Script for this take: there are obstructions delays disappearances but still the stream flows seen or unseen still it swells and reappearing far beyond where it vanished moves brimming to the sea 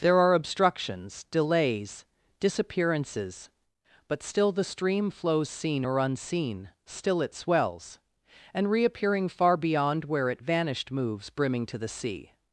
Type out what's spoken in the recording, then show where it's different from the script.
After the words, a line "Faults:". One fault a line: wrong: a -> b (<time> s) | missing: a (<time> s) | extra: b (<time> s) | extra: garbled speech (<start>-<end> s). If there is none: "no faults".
there are obstructions delays disappearances but still the stream flows seen or unseen still it swells and reappearing far beyond where it vanished moves brimming to the sea
Faults:
no faults